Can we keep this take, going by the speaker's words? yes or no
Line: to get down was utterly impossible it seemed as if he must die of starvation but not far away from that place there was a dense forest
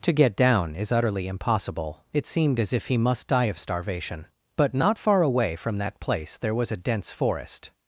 no